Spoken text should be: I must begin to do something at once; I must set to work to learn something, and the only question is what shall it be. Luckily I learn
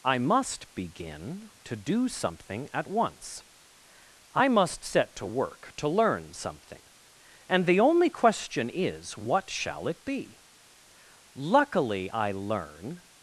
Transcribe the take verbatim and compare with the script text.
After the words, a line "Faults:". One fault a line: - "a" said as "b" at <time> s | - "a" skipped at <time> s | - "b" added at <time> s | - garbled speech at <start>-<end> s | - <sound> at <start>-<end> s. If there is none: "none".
I must begin to do something at once; I must set to work to learn something, and the only question is what shall it be. Luckily I learn
Faults:
none